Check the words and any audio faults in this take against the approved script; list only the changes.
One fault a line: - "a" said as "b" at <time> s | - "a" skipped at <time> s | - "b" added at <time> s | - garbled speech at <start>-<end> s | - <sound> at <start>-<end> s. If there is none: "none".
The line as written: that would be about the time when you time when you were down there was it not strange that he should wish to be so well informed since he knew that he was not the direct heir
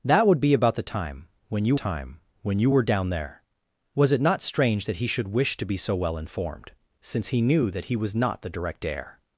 none